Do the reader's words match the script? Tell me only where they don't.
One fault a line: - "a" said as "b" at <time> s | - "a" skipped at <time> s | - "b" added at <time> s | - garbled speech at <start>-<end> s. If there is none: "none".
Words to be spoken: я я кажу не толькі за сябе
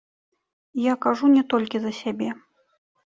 - "я" skipped at 0.9 s